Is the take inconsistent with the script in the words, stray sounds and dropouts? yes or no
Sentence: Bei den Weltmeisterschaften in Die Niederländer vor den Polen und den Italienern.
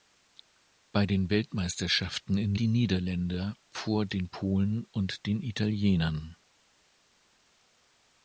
no